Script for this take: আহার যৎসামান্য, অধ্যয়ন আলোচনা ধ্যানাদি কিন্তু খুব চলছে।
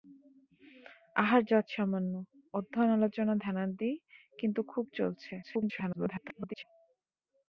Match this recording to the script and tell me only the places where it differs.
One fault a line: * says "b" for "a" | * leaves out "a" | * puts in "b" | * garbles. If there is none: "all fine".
* garbles